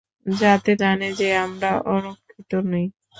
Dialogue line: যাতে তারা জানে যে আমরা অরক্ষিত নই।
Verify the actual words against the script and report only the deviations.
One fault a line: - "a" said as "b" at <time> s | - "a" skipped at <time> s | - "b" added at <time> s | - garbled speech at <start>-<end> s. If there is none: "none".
- "তারা" skipped at 0.7 s